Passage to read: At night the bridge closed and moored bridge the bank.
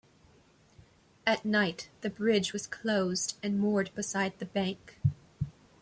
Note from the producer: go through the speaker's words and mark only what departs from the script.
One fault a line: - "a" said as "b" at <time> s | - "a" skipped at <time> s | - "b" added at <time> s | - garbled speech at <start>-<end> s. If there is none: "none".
- "was" added at 2.5 s
- "bridge" said as "beside" at 3.9 s